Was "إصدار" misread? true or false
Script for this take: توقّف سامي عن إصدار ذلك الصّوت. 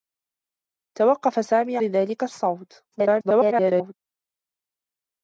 true